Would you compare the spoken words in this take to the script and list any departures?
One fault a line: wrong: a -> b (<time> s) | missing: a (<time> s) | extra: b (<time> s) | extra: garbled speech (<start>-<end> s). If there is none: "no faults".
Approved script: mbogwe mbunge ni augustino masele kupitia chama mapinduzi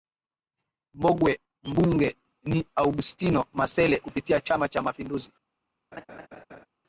extra: cha (4.7 s)